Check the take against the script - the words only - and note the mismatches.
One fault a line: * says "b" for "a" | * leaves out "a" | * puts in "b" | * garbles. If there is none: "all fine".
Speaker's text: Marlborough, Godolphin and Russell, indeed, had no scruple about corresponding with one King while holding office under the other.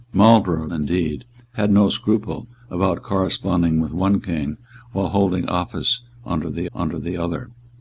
* leaves out "Godolphin and Russell"
* puts in "under the"